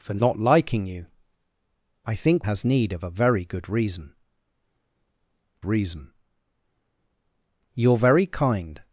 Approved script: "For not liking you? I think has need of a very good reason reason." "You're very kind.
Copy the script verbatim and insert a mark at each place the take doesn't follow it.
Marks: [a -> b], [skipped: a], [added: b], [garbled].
"For not liking you? I think has need of a very good reason reason." "You're very kind.